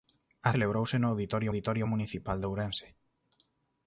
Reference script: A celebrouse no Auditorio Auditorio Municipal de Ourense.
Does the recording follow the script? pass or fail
pass